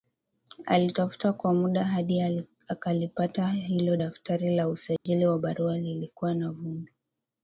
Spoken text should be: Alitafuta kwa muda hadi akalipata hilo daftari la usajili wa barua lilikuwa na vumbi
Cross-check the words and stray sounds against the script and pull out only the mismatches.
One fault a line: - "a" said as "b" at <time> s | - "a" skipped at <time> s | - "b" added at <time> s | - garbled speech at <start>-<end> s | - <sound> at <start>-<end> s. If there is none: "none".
- dropout at 5.0-5.1 s